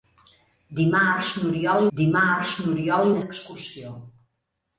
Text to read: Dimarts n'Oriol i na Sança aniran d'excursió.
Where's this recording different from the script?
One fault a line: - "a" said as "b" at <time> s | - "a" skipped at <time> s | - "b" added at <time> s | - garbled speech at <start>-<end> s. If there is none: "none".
- "dimarts n'Oriol" added at 2.0 s
- "Sança aniran" skipped at 3.2 s